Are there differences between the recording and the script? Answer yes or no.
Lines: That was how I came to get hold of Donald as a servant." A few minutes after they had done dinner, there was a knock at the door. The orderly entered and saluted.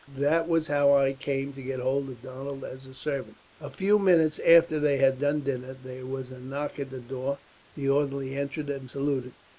no